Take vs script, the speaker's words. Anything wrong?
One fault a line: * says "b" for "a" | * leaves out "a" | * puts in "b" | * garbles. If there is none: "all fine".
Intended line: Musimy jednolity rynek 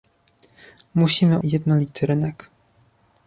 all fine